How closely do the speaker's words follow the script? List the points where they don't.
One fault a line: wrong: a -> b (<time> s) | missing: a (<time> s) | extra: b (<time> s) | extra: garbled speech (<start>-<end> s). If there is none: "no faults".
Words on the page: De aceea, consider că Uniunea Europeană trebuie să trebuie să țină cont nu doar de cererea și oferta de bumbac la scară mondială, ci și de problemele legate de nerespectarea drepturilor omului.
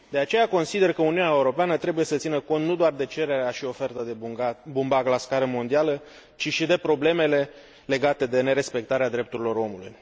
missing: trebuie să (2.2 s)